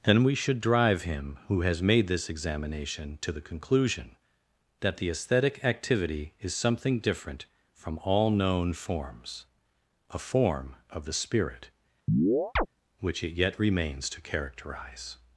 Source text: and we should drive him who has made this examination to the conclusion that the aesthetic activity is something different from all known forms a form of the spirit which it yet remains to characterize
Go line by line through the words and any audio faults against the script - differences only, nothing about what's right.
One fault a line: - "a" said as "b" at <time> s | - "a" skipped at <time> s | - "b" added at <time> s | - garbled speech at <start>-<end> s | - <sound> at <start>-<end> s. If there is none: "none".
- chirp at 12.1-12.7 s